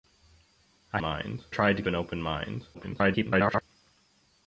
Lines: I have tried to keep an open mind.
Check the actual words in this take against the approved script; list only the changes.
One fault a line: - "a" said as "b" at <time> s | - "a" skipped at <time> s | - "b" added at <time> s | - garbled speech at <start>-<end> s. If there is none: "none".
- "have" said as "mind" at 1.0 s
- "keep" skipped at 1.8 s
- garbled speech at 2.7-3.6 s